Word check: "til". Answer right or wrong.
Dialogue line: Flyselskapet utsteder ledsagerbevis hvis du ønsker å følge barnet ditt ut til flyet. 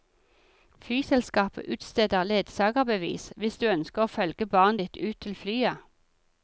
right